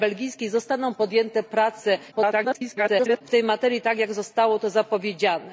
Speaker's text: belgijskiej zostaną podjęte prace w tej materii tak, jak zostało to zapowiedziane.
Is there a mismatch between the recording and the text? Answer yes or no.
yes